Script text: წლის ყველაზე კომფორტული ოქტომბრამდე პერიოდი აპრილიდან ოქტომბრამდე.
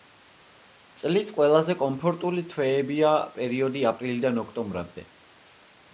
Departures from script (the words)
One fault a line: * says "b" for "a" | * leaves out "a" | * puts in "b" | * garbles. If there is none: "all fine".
* says "თვეებია" for "ოქტომბრამდე"